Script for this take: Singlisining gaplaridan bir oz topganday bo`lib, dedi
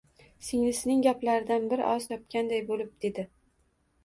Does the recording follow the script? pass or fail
pass